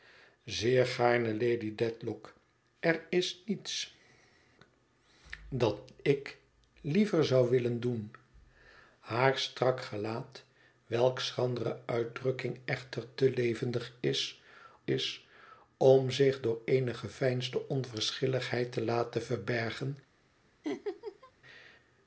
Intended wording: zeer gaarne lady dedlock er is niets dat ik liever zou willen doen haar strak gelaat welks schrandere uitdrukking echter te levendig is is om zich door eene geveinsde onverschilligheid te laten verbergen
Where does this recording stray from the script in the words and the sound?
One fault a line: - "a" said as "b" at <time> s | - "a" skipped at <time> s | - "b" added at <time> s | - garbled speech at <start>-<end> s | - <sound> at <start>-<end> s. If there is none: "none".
- laugh at 20.6-21.3 s